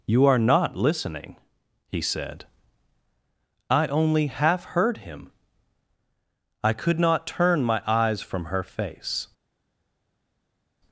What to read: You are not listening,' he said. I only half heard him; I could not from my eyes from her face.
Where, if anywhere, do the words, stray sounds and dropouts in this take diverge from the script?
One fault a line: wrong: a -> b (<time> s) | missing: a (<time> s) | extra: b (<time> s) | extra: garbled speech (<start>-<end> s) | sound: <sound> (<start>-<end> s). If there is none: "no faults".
wrong: from -> turn (7.3 s)